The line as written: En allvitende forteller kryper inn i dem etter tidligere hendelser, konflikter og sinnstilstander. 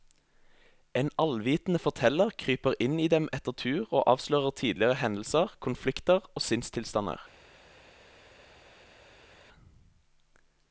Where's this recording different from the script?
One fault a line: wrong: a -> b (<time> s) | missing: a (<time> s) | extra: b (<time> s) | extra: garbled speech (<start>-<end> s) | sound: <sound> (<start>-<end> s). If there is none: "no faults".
extra: tur og avslører (3.6 s)